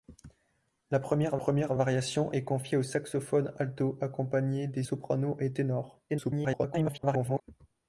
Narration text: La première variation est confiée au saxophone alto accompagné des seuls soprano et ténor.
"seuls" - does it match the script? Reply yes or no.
no